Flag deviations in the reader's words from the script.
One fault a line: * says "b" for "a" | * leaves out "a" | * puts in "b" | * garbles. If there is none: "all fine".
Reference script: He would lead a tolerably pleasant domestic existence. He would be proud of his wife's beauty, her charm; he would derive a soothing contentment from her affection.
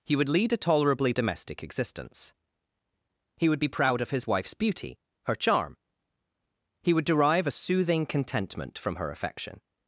* leaves out "pleasant"